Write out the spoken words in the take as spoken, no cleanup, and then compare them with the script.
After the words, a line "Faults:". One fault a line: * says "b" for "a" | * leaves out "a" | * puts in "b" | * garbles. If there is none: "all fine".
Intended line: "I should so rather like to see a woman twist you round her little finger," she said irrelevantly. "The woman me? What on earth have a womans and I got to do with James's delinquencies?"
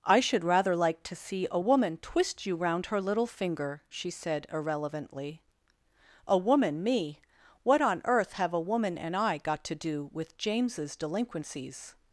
"I should rather like to see a woman twist you round her little finger," she said irrelevantly. "A woman me? What on earth have a woman and I got to do with James's delinquencies?"
Faults:
* leaves out "so"
* says "A" for "The"
* says "woman" for "womans"